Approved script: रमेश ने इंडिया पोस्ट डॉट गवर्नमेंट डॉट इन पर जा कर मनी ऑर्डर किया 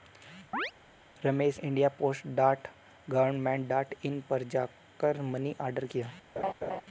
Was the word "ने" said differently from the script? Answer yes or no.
yes